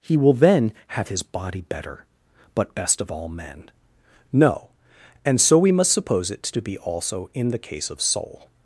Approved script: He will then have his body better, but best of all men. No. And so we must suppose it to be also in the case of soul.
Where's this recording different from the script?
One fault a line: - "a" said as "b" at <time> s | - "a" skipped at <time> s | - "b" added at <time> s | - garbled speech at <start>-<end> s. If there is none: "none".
none